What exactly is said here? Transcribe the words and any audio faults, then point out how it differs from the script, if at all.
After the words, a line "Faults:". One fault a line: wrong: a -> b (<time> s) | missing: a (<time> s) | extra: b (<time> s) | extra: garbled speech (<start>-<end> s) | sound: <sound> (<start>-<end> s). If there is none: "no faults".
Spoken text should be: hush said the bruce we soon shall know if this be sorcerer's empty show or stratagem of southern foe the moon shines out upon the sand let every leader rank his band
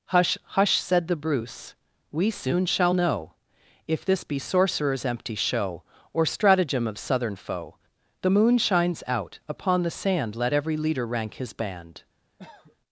hush hush said the bruce we soon shall know if this be sorcerer's empty show or stratagem of southern foe the moon shines out upon the sand let every leader rank his band
Faults:
extra: hush (0.4 s)
sound: cough (12.4-12.8 s)